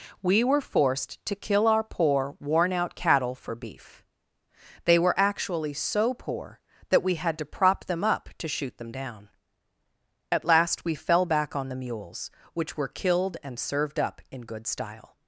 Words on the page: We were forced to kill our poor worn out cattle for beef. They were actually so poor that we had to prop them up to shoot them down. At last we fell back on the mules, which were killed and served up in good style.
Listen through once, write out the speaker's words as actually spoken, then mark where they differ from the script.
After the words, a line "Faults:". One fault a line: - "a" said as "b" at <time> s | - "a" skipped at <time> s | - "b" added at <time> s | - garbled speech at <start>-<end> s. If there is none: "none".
We were forced to kill our poor worn out cattle for beef. They were actually so poor that we had to prop them up to shoot them down. At last we fell back on the mules, which were killed and served up in good style.
Faults:
none